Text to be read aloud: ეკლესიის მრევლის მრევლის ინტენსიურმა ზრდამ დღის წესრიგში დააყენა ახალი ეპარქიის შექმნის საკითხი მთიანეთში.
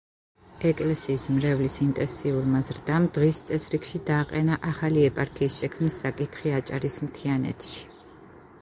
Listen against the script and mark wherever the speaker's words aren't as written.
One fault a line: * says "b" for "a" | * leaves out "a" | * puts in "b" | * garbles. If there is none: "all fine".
* leaves out "მრევლის"
* puts in "აჭარის"